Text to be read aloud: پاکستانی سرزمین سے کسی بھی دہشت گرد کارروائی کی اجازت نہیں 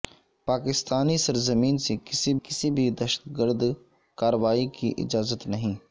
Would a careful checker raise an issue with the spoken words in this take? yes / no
yes